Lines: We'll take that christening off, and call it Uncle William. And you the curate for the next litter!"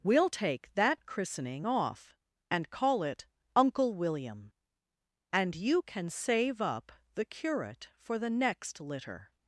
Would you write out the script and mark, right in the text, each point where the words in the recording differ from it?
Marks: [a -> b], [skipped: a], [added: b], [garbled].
We'll take that christening off, and call it Uncle William. And you [added: can save up] the curate for the next litter!"